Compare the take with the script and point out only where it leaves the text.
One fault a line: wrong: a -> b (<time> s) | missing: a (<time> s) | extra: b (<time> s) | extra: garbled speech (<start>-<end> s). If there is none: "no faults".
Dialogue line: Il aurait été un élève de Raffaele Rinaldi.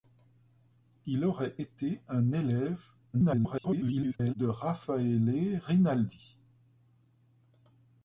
extra: garbled speech (3.1-4.3 s)